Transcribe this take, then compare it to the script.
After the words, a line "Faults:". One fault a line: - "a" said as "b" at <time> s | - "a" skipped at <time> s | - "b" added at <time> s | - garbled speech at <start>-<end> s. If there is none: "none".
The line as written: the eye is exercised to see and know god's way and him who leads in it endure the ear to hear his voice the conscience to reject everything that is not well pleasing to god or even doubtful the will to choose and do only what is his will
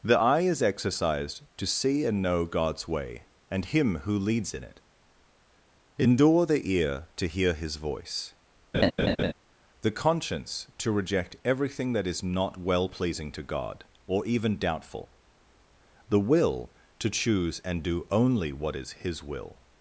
the eye is exercised to see and know god's way and him who leads in it endure the ear to hear his voice the conscience to reject everything that is not well pleasing to god or even doubtful the will to choose and do only what is his will
Faults:
none